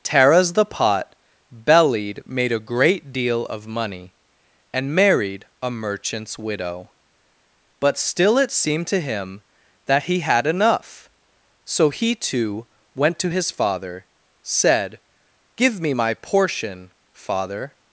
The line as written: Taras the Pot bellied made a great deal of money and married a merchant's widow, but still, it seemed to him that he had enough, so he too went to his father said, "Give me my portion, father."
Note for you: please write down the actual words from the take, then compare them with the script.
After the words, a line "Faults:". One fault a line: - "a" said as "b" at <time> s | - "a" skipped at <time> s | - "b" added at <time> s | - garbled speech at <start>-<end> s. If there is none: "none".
Taras the Pot bellied made a great deal of money and married a merchant's widow, but still, it seemed to him that he had enough, so he too went to his father said, "Give me my portion, father."
Faults:
none